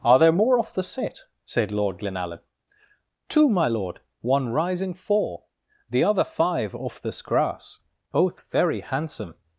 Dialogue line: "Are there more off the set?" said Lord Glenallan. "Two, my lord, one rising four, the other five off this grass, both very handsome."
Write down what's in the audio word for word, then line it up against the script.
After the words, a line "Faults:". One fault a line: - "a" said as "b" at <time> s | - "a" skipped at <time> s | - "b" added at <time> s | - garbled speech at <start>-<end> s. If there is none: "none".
"Are there more off the set?" said Lord Glenallan. "Two, my lord, one rising four, the other five off this grass, both very handsome."
Faults:
none